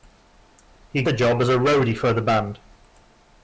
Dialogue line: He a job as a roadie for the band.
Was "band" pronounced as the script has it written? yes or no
yes